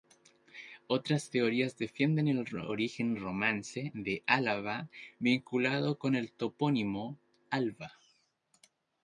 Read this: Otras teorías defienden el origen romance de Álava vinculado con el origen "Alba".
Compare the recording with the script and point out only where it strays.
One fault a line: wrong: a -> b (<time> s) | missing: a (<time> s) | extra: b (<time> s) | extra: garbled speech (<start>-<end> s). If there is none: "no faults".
wrong: origen -> topónimo (6.3 s)